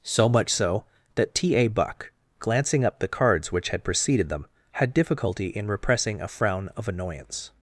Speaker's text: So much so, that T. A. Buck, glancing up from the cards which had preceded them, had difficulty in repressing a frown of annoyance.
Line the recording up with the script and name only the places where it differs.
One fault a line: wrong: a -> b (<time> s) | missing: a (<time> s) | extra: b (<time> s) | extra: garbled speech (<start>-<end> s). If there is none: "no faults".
missing: from (3.0 s)